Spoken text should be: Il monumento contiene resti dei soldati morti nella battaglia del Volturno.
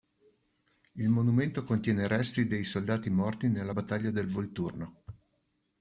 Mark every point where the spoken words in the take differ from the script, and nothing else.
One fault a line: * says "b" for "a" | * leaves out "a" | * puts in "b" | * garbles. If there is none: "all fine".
all fine